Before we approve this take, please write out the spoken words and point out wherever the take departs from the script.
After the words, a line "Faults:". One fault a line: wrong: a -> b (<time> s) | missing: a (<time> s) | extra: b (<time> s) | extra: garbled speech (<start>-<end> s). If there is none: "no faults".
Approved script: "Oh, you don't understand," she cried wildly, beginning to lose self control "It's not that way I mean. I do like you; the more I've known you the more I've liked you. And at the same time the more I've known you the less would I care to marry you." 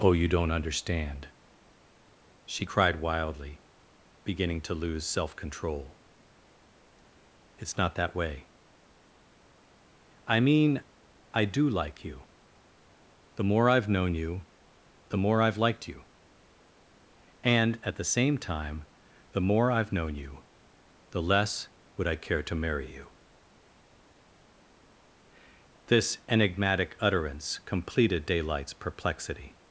"Oh, you don't understand," she cried wildly, beginning to lose self control "It's not that way I mean. I do like you; the more I've known you the more I've liked you. And at the same time the more I've known you the less would I care to marry you." This enigmatic utterance completed Daylight's perplexity
Faults:
extra: This enigmatic utterance completed Daylight's perplexity (25.9 s)